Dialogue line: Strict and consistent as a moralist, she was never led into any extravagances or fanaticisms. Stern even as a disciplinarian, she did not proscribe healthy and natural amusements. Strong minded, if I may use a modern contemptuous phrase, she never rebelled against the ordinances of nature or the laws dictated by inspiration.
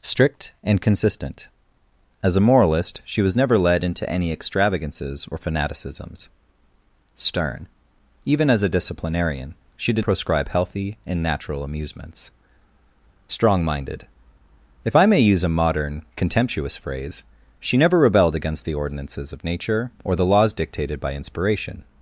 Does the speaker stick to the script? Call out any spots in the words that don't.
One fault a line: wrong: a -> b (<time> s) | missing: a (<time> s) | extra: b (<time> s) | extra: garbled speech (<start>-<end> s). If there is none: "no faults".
missing: not (10.1 s)